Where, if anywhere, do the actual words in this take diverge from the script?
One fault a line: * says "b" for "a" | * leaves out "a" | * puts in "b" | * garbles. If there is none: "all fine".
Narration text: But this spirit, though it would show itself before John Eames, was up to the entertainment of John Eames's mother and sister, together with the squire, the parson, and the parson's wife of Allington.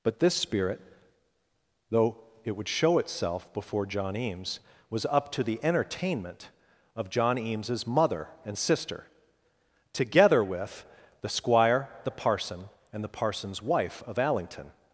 all fine